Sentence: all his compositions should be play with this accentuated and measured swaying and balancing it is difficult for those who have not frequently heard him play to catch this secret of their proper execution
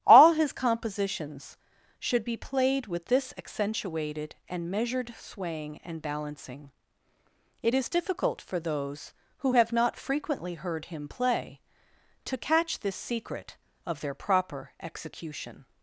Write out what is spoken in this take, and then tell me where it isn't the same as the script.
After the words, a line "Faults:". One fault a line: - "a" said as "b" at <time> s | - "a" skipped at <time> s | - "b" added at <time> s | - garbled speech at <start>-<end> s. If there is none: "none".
all his compositions should be played with this accentuated and measured swaying and balancing it is difficult for those who have not frequently heard him play to catch this secret of their proper execution
Faults:
- "play" said as "played" at 2.4 s